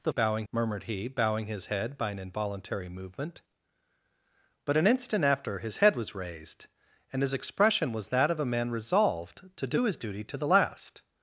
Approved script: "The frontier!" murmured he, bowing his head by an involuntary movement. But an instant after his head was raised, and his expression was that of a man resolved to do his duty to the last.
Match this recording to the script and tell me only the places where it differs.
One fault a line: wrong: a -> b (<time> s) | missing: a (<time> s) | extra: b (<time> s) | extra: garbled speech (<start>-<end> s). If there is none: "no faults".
wrong: frontier -> bowing (0.1 s)